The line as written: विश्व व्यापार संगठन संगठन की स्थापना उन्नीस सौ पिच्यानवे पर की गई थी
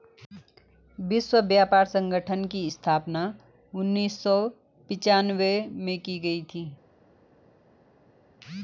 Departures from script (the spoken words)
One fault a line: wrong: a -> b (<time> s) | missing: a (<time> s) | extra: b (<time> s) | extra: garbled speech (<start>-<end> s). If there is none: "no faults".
missing: संगठन (2.5 s)
wrong: पर -> में (5.7 s)